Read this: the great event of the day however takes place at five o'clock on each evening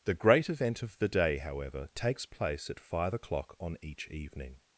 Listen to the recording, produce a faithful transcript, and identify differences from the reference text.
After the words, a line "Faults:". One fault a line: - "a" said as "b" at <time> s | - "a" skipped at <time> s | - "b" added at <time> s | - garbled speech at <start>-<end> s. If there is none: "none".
the great event of the day however takes place at five o'clock on each evening
Faults:
none